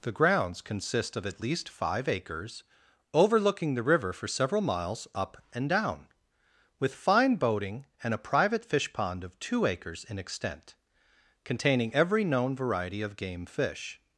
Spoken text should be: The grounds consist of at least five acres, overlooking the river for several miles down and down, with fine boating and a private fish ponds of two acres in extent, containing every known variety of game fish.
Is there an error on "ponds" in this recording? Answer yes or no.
yes